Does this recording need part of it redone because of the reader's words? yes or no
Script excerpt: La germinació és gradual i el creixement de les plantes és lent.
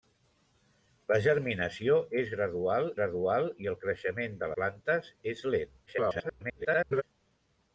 yes